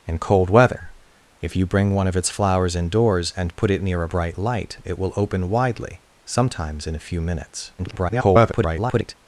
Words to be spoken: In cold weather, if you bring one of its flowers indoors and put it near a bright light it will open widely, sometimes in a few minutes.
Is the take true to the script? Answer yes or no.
no